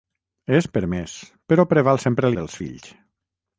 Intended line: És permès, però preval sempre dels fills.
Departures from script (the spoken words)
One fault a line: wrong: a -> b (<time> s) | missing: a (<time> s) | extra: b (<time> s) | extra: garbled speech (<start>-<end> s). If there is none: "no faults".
no faults